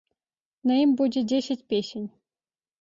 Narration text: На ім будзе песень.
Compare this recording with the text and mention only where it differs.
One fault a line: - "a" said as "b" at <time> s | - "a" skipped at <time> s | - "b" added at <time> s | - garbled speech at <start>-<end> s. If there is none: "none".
- "дзесяць" added at 1.3 s